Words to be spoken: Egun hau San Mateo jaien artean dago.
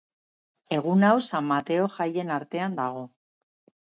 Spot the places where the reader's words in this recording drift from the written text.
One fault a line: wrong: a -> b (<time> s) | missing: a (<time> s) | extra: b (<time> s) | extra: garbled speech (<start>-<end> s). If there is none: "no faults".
no faults